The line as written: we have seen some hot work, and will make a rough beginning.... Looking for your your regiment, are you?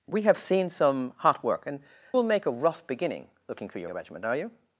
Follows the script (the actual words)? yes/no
yes